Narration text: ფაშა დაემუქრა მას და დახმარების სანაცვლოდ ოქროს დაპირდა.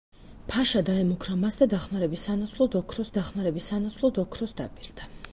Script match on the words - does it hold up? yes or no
no